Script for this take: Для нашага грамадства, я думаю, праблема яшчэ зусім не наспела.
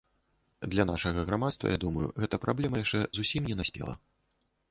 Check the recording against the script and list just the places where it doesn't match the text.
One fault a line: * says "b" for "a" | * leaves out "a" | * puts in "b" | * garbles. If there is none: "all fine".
* puts in "гэта"